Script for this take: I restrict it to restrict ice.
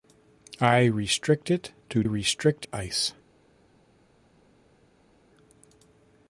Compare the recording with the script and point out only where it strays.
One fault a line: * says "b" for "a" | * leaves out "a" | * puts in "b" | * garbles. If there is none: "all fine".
all fine